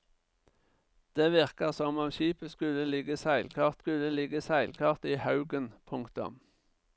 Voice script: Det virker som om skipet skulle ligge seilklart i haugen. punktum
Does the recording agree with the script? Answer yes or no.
no